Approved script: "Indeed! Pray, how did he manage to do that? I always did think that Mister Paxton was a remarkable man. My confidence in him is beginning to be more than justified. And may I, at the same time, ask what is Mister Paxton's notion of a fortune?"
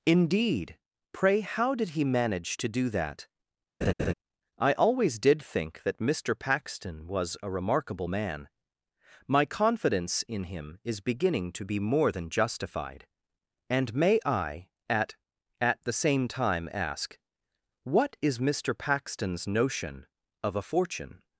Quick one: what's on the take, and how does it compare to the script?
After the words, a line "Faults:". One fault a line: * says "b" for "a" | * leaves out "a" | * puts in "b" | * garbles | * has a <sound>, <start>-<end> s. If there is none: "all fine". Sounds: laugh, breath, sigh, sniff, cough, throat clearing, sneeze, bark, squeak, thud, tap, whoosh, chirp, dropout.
"Indeed! Pray, how did he manage to do that? I always did think that Mister Paxton was a remarkable man. My confidence in him is beginning to be more than justified. And may I, at at the same time, ask what is Mister Paxton's notion of a fortune?"
Faults:
* has a laugh, 3.8-4.1 s
* puts in "at"